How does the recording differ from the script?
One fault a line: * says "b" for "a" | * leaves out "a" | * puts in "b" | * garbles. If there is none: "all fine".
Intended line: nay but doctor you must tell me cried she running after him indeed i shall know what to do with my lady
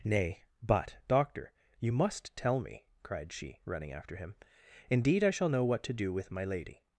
all fine